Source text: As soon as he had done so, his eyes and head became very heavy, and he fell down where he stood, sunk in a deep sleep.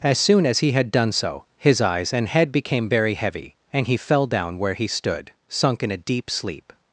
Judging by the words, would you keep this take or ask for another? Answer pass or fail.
pass